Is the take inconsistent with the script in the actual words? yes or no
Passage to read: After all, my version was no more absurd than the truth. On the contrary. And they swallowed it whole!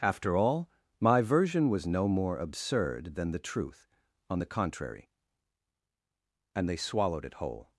no